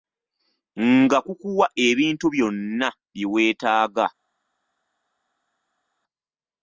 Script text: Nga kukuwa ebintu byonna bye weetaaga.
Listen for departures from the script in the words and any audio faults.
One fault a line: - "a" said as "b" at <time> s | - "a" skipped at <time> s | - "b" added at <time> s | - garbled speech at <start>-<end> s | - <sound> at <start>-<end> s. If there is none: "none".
none